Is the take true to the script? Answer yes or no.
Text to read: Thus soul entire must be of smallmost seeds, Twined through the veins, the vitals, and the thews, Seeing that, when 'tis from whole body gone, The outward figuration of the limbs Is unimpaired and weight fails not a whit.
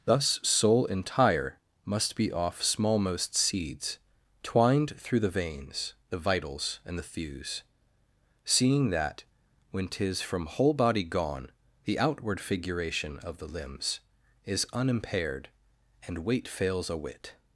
no